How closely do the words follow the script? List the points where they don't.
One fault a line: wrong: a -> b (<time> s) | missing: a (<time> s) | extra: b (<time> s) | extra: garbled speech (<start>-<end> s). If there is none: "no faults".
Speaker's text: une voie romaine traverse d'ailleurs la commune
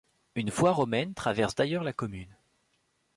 no faults